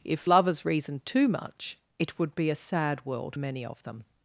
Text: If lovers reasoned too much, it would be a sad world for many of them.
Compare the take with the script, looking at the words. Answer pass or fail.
fail